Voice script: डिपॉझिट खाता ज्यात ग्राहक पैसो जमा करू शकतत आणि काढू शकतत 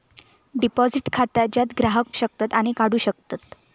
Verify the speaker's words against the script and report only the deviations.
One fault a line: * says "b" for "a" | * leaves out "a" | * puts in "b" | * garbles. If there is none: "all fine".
* leaves out "पैसो जमा करू"